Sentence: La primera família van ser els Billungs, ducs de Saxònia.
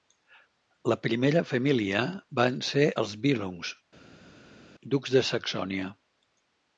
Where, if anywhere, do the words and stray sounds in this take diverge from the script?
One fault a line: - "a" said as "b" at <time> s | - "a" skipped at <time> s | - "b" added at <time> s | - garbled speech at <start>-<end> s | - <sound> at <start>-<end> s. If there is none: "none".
none